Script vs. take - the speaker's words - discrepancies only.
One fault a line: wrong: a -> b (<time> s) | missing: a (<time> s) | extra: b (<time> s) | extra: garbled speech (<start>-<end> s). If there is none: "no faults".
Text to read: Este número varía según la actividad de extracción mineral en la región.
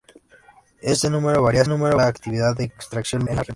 wrong: según -> número (1.7 s)
missing: mineral (3.3 s)